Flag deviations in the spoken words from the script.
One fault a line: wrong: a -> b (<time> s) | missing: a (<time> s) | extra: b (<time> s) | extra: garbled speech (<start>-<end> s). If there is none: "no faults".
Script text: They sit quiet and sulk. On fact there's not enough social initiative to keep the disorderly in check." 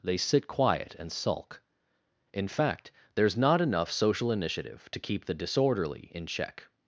wrong: On -> In (2.3 s)